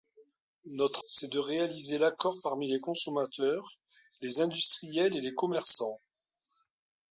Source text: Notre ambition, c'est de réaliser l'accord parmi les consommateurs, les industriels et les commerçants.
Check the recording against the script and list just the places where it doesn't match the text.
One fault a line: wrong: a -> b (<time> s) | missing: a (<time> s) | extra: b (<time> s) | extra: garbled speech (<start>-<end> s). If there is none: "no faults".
missing: ambition (1.0 s)